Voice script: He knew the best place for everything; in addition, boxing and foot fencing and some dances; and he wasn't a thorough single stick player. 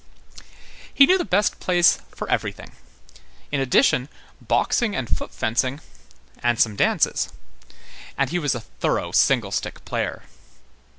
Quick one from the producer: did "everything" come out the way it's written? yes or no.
yes